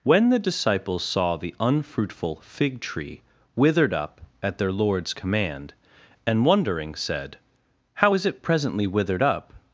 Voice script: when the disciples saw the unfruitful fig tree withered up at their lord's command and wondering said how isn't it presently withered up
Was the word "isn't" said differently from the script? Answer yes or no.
yes